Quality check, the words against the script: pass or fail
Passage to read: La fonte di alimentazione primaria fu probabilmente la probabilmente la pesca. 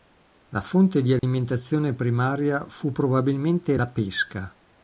fail